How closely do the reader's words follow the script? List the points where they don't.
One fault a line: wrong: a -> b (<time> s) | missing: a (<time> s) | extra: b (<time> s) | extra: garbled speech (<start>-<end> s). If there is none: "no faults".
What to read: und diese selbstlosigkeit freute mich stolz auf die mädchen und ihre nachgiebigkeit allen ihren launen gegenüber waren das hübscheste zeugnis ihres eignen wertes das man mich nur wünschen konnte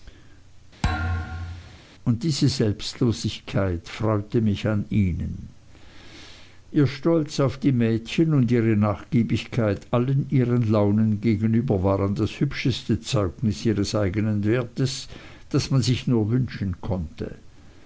extra: an ihnen ihr (4.7 s)
wrong: mich -> sich (15.8 s)